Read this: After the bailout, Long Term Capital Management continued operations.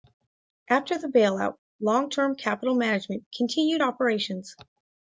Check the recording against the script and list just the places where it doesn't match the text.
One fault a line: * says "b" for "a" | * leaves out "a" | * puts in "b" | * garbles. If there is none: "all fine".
all fine